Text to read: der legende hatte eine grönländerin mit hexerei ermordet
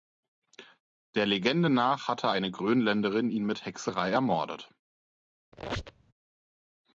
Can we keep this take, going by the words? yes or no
no